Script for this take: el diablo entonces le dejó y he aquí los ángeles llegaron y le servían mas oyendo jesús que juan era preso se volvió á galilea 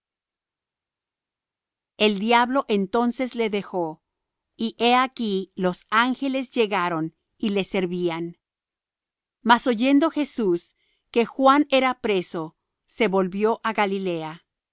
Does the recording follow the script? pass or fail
pass